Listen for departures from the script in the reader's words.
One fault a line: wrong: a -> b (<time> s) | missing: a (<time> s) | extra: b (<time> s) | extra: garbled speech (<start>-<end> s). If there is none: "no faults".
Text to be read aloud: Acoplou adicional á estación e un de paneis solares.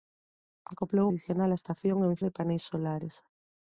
no faults